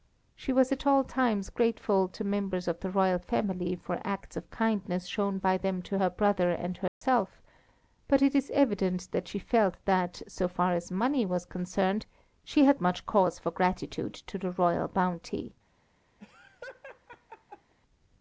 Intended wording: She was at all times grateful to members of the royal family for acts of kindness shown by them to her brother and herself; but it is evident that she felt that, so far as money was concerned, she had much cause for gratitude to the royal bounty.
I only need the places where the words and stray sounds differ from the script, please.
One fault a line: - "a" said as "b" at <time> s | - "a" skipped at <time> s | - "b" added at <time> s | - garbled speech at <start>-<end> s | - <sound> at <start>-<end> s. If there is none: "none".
- dropout at 6.9-7.0 s
- laugh at 16.2-17.7 s